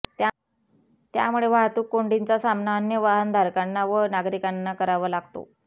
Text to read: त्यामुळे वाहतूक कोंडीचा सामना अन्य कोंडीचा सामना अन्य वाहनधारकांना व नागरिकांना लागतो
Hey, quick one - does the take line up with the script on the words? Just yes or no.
no